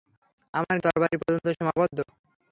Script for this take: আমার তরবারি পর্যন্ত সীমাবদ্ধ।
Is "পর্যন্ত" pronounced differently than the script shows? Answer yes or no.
no